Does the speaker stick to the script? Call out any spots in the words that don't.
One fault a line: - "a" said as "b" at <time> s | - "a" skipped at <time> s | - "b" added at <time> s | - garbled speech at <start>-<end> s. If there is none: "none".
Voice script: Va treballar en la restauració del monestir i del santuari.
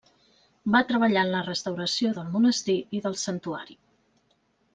none